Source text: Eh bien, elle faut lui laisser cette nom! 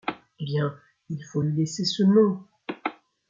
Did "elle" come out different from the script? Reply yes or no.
yes